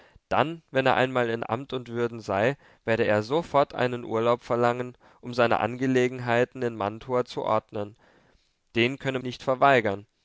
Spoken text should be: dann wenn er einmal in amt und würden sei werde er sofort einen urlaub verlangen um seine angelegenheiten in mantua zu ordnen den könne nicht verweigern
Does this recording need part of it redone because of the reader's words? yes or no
no